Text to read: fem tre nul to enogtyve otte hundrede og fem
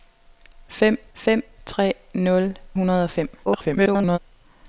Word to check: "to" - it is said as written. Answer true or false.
false